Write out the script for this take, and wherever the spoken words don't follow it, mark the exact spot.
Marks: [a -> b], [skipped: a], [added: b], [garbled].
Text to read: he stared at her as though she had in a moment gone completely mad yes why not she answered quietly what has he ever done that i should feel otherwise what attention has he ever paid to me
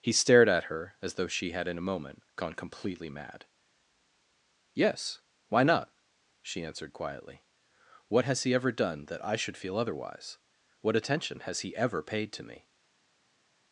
he stared at her as though she had in a moment gone completely mad yes why not she answered quietly what has he ever done that i should feel otherwise what attention has he ever paid to me